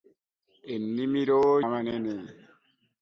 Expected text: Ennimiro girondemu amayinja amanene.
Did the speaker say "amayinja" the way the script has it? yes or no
no